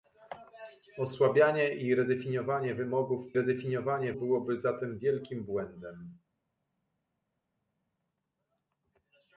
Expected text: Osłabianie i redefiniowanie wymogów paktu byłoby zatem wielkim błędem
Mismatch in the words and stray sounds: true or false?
true